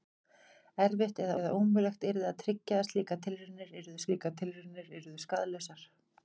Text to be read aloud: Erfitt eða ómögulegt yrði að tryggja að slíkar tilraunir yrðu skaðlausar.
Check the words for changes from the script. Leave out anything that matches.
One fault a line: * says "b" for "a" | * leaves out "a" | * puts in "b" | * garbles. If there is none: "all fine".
* puts in "eða"
* puts in "slíkar tilraunir yrðu"